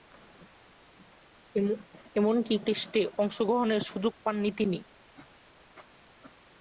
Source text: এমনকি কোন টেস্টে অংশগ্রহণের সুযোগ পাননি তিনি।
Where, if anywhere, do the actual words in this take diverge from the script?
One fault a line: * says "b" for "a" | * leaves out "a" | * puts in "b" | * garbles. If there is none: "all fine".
* leaves out "কোন"